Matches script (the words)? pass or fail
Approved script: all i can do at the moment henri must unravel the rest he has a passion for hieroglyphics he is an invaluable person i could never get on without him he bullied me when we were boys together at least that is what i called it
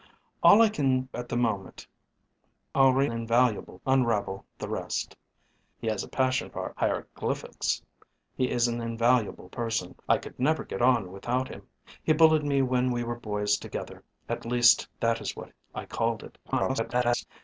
fail